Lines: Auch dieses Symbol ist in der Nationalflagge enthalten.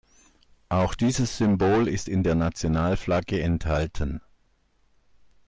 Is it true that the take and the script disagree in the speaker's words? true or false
false